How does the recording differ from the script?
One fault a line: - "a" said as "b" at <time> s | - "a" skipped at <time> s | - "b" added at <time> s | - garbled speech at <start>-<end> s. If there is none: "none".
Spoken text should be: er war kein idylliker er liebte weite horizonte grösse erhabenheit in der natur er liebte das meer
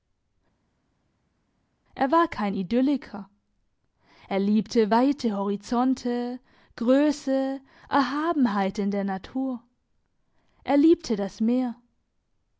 none